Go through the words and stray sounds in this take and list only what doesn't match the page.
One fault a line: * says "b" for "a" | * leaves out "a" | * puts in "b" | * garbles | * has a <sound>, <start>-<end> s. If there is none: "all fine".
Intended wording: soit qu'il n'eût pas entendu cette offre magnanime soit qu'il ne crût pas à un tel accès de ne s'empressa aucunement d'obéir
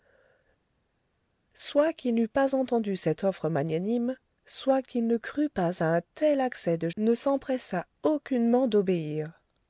all fine